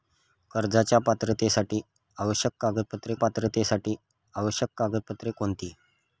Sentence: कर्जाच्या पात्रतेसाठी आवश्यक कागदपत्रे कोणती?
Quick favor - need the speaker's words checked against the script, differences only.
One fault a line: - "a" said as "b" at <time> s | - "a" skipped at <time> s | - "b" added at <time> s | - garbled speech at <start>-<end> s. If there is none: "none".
- "पात्रतेसाठी आवश्यक कागदपत्रे" added at 3.1 s